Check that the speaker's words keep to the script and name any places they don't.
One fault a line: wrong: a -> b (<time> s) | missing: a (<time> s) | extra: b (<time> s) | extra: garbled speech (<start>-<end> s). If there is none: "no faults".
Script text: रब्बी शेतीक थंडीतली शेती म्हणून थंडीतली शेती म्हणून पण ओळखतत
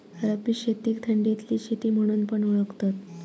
missing: थंडीतली शेती म्हणून (2.2 s)